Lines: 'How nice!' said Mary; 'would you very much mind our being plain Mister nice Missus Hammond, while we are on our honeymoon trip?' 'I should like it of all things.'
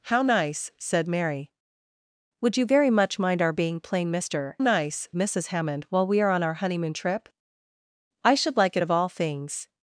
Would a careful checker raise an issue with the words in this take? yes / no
no